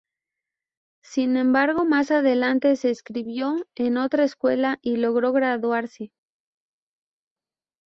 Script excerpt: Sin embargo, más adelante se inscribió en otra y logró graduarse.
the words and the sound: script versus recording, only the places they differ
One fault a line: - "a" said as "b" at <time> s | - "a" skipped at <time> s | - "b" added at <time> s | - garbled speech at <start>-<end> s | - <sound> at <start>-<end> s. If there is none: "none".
- "escuela" added at 4.2 s